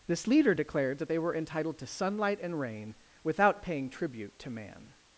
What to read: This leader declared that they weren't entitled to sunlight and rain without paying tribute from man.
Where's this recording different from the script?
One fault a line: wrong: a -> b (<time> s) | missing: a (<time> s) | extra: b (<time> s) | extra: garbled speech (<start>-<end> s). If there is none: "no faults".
wrong: weren't -> were (1.2 s)
wrong: from -> to (4.4 s)